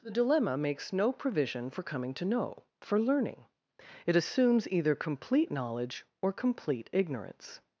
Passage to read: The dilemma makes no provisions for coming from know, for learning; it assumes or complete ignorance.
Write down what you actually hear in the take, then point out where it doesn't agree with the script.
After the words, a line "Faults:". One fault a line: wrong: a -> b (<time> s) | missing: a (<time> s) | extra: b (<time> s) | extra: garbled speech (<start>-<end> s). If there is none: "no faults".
The dilemma makes no provision for coming to know, for learning; it assumes either complete knowledge or complete ignorance.
Faults:
wrong: provisions -> provision (1.1 s)
wrong: from -> to (2.1 s)
extra: either complete knowledge (4.7 s)